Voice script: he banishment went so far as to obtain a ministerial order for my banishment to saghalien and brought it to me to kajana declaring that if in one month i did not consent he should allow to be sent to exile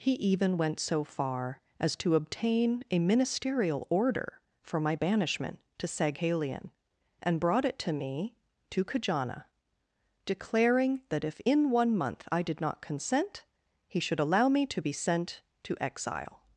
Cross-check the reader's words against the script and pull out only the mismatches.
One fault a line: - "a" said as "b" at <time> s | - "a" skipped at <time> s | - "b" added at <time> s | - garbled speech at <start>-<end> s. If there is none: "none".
- "banishment" said as "even" at 0.1 s
- "me" added at 14.5 s